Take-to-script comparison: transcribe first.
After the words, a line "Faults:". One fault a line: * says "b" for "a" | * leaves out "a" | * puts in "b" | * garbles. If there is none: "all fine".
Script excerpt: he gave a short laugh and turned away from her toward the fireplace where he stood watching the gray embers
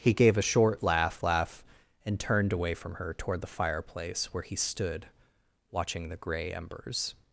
he gave a short laugh laugh and turned away from her toward the fireplace where he stood watching the gray embers
Faults:
* puts in "laugh"